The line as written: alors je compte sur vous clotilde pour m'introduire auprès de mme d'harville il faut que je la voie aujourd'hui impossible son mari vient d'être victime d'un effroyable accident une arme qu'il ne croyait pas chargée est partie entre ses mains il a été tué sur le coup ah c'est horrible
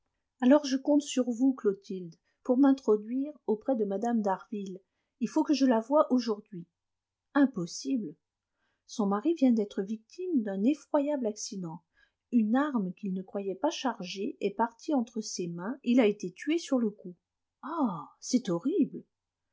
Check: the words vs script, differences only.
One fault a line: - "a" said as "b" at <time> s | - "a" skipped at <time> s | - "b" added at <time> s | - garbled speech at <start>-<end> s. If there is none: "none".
none